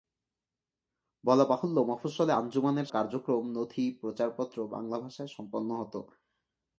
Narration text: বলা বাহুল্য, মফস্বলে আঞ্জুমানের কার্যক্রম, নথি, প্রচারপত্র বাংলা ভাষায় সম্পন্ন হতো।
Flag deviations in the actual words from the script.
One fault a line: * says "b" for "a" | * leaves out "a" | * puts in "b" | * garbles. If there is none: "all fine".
all fine